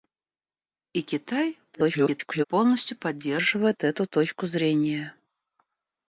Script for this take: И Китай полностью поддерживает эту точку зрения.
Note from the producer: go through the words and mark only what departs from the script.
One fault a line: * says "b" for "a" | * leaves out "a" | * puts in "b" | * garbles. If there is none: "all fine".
* garbles